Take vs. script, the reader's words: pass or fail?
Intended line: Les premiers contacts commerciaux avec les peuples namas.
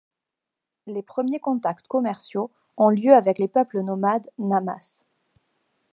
fail